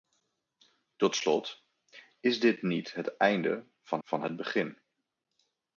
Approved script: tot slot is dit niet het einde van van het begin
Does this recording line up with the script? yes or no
yes